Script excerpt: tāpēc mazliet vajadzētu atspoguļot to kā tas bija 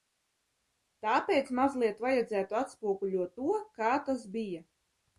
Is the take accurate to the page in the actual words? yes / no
yes